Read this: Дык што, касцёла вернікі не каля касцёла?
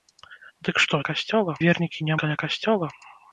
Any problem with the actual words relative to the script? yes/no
no